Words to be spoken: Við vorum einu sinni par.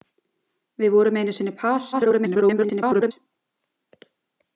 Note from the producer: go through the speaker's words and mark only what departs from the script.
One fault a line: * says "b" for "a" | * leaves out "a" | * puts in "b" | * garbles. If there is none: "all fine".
* garbles